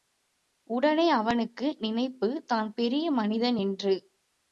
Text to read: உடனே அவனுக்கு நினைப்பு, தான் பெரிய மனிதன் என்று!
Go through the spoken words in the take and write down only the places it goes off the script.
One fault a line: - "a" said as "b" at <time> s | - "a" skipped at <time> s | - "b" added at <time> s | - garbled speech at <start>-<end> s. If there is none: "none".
none